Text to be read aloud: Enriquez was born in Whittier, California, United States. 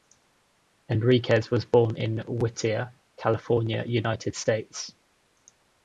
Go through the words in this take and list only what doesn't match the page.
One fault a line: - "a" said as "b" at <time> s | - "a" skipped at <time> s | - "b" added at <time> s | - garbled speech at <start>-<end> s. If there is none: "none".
none